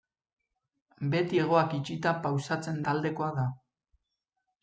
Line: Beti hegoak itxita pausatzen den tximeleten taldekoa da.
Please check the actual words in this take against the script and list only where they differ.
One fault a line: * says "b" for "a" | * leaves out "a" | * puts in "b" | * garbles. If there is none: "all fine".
* leaves out "den tximeleten"